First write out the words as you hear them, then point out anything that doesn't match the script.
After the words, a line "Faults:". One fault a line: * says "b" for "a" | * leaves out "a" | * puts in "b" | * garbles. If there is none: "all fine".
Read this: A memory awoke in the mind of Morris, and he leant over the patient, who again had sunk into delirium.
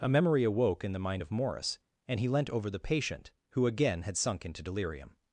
A memory awoke in the mind of Morris, and he leant over the patient, who again had sunk into delirium.
Faults:
all fine